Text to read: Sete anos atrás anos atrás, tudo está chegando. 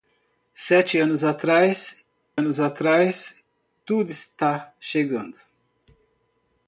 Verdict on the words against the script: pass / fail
pass